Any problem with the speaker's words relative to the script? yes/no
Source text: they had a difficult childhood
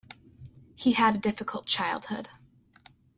yes